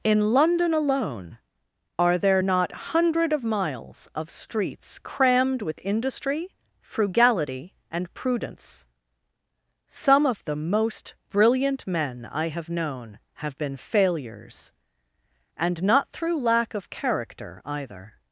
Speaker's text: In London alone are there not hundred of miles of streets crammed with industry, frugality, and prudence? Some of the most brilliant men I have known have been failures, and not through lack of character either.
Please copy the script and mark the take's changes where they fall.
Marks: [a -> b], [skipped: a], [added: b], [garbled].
In London alone are there not hundred of miles of streets crammed with industry, frugality, and prudence? Some of the most brilliant men I have known have been failures, and not through lack of character either.